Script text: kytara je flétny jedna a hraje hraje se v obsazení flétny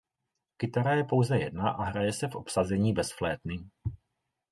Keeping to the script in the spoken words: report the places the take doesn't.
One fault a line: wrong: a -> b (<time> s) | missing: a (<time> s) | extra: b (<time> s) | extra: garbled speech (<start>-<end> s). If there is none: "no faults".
wrong: flétny -> pouze (1.0 s)
missing: hraje (2.1 s)
extra: bez (2.9 s)